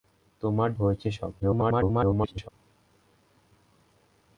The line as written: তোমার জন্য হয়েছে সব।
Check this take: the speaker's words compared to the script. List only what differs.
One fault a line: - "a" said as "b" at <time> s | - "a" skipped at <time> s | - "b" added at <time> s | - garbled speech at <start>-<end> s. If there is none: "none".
- "জন্য" skipped at 0.7 s
- garbled speech at 1.4-2.5 s